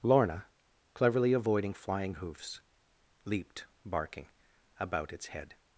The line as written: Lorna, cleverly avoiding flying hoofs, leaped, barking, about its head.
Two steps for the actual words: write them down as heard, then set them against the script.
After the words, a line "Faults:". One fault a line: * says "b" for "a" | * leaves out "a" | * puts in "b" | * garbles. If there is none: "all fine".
Lorna, cleverly avoiding flying hoofs, leaped, barking, about its head.
Faults:
all fine